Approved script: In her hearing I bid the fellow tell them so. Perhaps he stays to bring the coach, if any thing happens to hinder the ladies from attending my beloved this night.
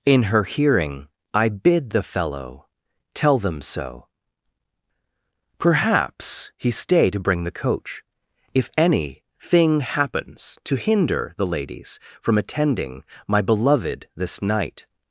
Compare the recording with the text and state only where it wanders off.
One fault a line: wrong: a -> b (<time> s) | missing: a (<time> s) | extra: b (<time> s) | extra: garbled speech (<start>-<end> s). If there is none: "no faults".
wrong: stays -> stay (6.7 s)